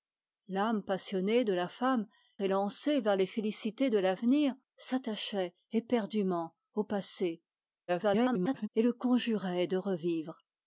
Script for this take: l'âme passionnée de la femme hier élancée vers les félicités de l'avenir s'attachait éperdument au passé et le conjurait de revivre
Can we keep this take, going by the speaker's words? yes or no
no